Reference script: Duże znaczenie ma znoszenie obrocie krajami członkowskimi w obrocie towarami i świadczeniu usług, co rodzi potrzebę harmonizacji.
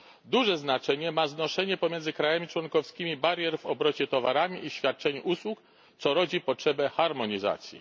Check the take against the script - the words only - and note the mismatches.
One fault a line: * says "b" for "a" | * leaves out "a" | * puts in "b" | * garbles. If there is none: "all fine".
* says "pomiędzy" for "obrocie"
* puts in "barier"